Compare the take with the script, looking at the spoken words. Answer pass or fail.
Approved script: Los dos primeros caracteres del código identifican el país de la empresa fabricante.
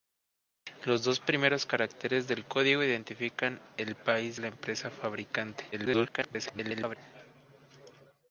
fail